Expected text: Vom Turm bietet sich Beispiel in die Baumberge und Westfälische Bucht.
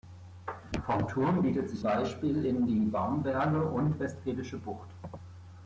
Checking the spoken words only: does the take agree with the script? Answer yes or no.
yes